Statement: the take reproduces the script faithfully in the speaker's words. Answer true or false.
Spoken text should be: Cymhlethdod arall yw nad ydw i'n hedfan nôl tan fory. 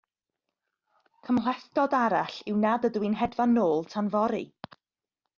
true